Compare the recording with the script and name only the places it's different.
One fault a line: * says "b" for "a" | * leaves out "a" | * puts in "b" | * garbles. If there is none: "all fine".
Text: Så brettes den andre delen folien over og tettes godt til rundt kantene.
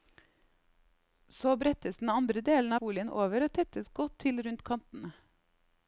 all fine